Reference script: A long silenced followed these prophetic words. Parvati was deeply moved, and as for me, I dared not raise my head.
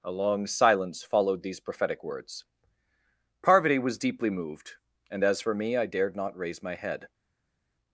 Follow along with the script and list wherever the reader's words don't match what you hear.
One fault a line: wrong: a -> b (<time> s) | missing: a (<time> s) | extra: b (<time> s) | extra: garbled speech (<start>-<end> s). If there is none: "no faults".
wrong: silenced -> silence (0.5 s)